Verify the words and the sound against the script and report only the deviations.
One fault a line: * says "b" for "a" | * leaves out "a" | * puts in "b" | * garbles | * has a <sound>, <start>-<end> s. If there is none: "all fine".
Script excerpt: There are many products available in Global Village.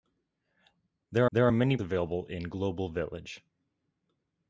* puts in "there"
* leaves out "products"